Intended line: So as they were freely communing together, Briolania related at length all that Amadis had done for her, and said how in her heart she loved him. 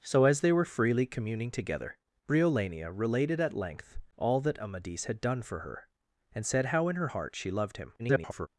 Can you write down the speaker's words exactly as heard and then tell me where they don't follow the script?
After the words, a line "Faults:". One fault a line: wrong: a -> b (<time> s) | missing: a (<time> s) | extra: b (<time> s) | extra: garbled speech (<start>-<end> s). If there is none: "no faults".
So as they were freely communing together, Briolania related at length all that Amadis had done for her, and said how in her heart she loved him. [garbled]
Faults:
extra: garbled speech (8.0-8.5 s)